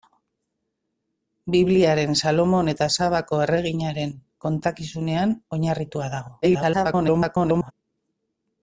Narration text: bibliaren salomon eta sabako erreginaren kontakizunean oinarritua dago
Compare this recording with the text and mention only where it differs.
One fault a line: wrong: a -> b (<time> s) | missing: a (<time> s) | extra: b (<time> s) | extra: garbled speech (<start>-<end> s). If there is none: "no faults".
extra: garbled speech (6.4-7.7 s)